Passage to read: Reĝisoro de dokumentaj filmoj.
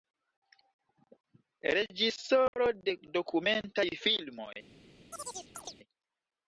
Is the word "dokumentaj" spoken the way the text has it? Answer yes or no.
yes